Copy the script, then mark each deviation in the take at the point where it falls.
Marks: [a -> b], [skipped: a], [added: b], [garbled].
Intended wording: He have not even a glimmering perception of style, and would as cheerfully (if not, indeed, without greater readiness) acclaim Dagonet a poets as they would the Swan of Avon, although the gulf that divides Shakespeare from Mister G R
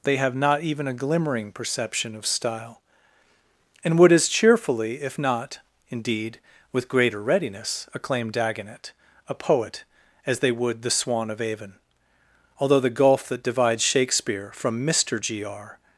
[He -> They] have not even a glimmering perception of style, and would as cheerfully (if not, indeed, [without -> with] greater readiness) acclaim Dagonet a [poets -> poet] as they would the Swan of Avon, although the gulf that divides Shakespeare from Mister G R